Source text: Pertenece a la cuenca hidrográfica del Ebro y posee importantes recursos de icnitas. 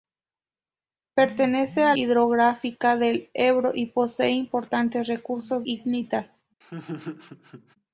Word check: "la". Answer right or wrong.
wrong